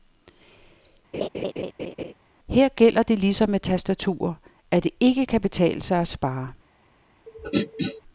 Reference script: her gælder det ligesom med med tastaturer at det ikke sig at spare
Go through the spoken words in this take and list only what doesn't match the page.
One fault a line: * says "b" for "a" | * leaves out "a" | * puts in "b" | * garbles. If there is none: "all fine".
* leaves out "med"
* puts in "kan betale"